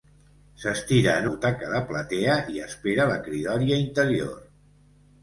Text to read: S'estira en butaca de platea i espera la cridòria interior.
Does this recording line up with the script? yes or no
yes